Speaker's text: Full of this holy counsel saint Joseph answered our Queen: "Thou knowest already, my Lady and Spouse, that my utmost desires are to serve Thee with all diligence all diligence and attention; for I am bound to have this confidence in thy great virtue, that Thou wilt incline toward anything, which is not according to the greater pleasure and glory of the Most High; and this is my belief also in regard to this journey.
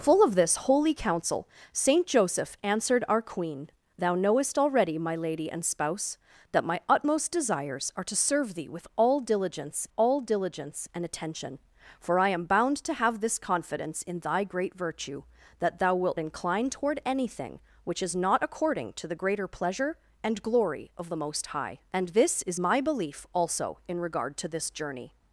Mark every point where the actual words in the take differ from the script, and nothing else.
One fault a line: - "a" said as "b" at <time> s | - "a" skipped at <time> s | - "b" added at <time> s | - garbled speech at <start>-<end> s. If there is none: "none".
none